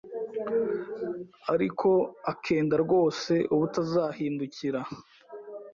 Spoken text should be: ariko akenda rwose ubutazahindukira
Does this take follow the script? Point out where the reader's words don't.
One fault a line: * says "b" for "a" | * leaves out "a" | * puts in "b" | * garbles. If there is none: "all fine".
all fine